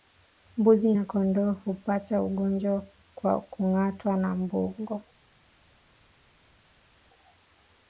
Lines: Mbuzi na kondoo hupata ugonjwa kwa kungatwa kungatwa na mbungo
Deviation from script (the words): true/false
true